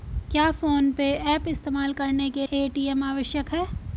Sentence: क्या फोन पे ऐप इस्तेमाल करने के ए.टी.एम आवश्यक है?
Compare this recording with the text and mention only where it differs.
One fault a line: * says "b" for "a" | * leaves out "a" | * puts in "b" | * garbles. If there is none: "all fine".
all fine